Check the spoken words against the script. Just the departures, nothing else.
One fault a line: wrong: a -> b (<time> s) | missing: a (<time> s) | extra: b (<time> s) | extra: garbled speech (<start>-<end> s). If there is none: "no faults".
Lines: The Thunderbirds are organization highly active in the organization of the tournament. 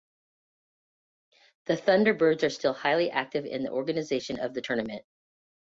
wrong: organization -> still (2.5 s)